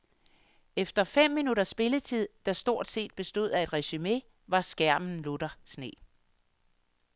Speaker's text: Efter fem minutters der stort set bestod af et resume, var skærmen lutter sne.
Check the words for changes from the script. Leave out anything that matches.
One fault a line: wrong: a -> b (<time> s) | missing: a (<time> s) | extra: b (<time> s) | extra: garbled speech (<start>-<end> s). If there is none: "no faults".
extra: spilletid (1.7 s)